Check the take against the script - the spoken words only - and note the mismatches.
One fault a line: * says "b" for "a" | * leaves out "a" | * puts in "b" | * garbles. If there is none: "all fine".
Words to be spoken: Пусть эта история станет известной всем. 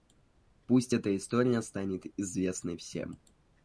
all fine